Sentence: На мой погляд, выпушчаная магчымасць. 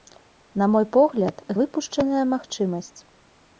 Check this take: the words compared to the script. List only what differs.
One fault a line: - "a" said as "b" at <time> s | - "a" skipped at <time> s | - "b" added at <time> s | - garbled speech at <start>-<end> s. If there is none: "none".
none